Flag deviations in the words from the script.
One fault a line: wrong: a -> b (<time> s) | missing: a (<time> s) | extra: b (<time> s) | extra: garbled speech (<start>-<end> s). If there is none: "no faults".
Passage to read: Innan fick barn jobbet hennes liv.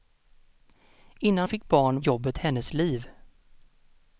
no faults